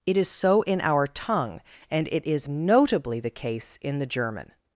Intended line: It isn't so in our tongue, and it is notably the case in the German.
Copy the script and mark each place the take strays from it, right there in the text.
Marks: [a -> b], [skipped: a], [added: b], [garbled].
It [isn't -> is] so in our tongue, and it is notably the case in the German.